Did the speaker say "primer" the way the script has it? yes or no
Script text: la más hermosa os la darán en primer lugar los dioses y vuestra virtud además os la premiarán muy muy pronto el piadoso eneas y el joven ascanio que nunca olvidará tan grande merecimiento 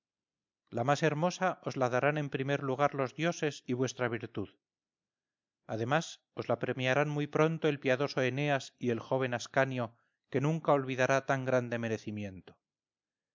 yes